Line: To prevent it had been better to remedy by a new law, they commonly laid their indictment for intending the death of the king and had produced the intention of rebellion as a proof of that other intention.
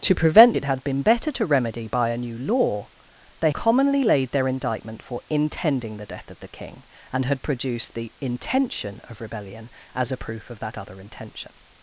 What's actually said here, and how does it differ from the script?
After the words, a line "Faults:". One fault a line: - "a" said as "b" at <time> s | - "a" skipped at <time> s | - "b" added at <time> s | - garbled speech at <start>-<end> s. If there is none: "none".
To prevent it had been better to remedy by a new law, they commonly laid their indictment for intending the death of the king and had produced the intention of rebellion as a proof of that other intention.
Faults:
none